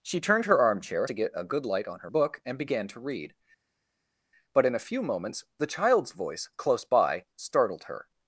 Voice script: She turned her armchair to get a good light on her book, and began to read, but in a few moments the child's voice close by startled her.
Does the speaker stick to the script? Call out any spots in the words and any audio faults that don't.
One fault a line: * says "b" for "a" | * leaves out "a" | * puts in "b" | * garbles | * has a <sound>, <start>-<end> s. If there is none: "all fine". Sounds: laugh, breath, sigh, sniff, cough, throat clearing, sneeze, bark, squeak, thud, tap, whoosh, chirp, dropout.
all fine